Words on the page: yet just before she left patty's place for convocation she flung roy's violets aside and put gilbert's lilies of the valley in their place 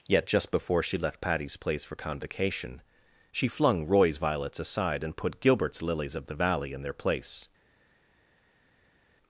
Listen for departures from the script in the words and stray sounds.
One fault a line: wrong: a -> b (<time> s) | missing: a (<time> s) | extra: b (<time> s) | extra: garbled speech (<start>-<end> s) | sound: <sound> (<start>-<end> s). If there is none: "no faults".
no faults